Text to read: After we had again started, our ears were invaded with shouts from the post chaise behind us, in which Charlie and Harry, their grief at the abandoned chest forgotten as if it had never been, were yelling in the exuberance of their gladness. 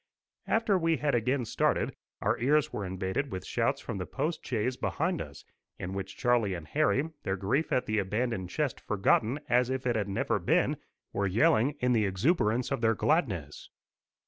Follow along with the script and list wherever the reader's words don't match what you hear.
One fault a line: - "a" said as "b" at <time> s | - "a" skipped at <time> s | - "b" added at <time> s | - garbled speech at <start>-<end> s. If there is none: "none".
none